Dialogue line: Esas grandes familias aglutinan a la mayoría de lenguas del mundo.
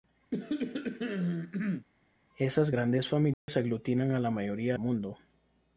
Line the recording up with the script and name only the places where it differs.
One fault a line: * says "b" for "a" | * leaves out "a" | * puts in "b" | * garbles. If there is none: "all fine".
* leaves out "de lenguas del"